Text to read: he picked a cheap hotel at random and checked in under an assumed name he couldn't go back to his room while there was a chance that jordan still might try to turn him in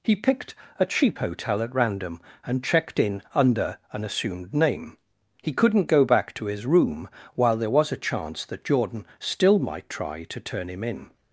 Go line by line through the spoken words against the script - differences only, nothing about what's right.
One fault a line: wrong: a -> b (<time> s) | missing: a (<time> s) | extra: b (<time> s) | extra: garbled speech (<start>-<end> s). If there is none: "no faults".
no faults